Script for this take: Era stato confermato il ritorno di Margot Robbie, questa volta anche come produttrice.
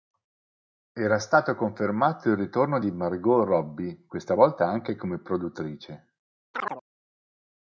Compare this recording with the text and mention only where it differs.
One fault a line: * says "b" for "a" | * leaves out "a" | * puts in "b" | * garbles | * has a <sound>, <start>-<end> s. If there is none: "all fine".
* has a chirp, 6.5-6.8 s